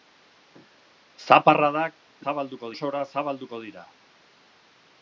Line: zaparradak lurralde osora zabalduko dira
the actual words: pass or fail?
fail